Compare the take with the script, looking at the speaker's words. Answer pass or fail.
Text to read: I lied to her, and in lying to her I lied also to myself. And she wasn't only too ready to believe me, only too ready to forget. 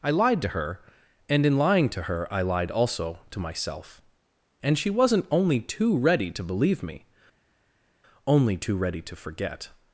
pass